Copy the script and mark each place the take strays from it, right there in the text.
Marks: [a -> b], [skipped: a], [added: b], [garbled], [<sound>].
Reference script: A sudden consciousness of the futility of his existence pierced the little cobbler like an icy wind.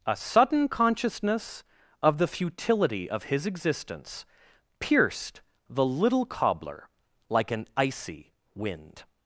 A sudden consciousness of the futility of his existence pierced the little cobbler like an icy wind.